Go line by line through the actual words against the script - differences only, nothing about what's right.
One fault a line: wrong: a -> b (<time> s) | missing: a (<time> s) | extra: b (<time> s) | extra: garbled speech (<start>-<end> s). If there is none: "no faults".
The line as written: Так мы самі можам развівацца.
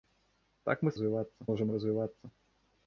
wrong: самі -> развівацца (0.9 s)